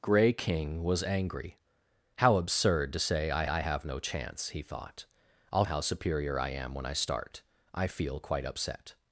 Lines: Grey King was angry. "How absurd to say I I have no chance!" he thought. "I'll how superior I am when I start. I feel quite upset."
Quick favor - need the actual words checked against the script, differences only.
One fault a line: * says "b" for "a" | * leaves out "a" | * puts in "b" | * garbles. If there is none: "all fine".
all fine